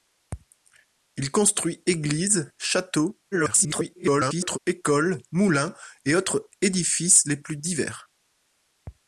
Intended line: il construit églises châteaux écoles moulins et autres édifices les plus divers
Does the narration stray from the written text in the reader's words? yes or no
yes